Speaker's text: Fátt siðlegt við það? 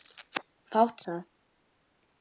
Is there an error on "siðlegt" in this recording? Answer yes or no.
yes